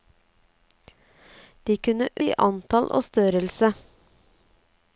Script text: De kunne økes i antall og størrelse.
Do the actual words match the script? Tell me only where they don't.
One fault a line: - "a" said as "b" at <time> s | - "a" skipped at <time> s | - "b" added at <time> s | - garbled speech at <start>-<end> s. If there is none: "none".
- "økes" skipped at 2.1 s